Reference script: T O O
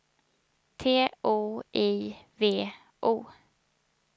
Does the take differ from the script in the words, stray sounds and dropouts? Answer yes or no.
yes